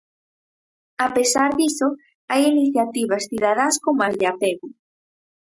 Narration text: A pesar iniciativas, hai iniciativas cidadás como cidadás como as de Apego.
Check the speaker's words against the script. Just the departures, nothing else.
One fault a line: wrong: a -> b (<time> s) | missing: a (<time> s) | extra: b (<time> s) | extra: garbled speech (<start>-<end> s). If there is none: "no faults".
wrong: iniciativas -> diso (1.6 s)
missing: cidadás como (4.0 s)